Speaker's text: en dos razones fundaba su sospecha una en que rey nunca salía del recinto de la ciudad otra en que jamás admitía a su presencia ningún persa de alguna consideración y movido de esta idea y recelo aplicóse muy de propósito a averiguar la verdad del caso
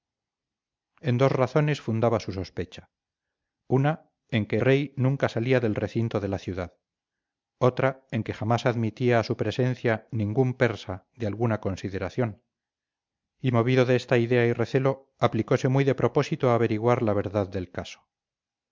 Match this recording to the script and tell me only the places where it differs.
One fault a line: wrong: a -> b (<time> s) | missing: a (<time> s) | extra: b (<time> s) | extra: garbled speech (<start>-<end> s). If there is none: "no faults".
no faults